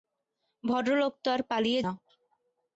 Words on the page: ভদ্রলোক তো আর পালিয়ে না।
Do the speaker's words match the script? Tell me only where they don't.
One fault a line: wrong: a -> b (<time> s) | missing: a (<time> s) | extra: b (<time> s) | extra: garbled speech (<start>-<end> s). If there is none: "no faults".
no faults